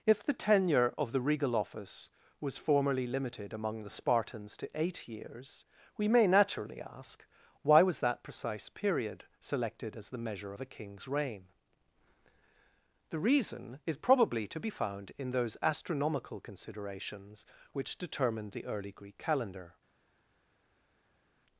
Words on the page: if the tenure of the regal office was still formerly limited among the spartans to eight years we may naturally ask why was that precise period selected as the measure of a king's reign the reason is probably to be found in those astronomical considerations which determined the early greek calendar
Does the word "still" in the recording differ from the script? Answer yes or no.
yes